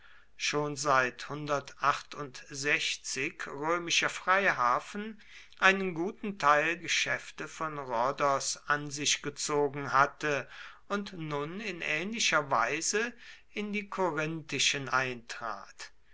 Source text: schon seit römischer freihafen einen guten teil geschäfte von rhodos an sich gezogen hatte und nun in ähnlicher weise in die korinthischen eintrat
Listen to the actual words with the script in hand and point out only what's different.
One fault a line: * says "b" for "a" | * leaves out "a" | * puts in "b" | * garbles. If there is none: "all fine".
all fine